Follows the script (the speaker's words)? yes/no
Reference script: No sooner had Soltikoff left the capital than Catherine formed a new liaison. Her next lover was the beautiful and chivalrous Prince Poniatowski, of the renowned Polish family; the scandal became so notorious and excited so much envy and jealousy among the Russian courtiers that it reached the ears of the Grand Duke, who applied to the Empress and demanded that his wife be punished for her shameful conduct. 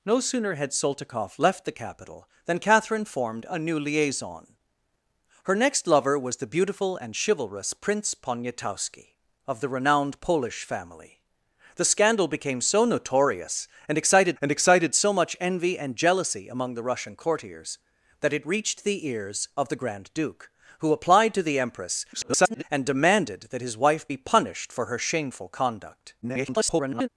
no